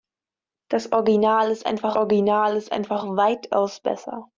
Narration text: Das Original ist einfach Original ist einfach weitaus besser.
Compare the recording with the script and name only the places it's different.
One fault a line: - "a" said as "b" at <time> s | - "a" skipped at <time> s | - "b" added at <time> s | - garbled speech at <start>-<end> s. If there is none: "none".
none